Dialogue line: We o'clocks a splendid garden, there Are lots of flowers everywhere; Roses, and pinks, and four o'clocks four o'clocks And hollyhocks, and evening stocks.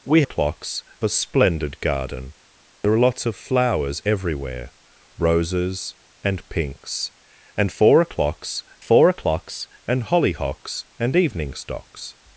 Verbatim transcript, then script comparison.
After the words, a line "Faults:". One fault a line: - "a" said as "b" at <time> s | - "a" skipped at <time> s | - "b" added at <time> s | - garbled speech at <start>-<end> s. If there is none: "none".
We o'clocks a splendid garden, there Are lots of flowers everywhere; Roses, and pinks, and four o'clocks four o'clocks And hollyhocks, and evening stocks.
Faults:
none